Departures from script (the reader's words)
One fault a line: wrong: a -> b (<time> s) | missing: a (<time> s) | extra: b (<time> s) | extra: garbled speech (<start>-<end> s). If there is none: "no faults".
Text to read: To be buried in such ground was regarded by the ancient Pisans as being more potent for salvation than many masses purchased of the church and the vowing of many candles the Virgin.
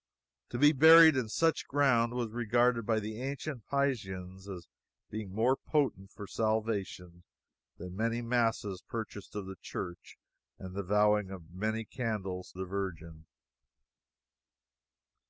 no faults